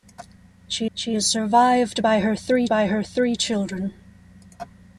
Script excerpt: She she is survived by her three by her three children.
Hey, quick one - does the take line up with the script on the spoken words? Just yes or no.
yes